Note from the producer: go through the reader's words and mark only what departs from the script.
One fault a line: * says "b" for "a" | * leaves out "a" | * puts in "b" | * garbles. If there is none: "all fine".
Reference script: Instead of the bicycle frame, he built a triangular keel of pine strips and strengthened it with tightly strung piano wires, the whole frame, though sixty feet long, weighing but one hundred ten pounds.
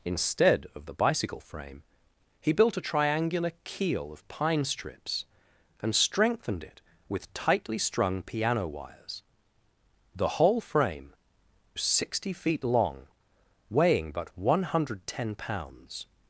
* leaves out "though"